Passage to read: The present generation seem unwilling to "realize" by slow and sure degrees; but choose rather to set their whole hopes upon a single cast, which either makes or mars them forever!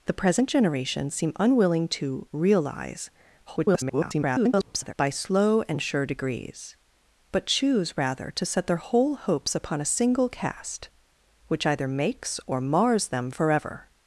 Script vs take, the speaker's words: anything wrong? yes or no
yes